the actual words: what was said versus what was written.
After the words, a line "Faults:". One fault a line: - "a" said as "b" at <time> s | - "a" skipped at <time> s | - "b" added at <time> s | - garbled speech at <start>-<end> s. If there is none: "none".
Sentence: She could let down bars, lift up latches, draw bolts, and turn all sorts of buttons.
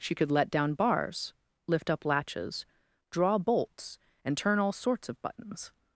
She could let down bars, lift up latches, draw bolts, and turn all sorts of buttons.
Faults:
none